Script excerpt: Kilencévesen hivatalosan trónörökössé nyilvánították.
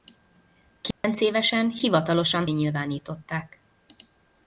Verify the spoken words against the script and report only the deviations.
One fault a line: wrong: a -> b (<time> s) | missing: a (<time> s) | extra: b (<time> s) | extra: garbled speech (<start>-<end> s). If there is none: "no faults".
missing: trónörökössé (2.5 s)